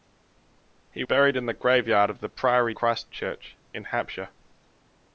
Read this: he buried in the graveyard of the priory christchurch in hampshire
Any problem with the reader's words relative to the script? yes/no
no